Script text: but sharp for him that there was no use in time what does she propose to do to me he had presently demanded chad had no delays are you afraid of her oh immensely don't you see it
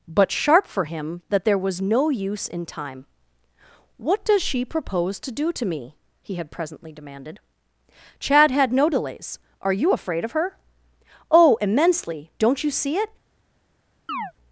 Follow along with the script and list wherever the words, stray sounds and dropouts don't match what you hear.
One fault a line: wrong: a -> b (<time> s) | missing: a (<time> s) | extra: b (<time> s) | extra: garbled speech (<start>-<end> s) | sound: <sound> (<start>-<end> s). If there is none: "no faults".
sound: chirp (14.1-14.3 s)